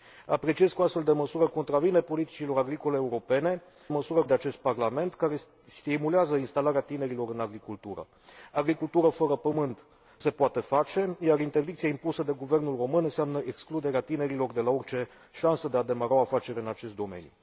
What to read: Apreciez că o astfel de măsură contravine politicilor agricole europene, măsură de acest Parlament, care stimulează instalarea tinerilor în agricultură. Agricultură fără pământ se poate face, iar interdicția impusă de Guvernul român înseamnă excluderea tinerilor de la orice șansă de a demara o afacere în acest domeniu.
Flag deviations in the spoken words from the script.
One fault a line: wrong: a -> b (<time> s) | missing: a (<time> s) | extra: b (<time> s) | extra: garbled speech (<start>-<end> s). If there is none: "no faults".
no faults